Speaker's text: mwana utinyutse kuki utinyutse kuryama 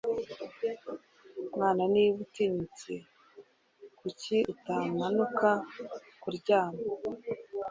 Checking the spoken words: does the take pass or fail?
fail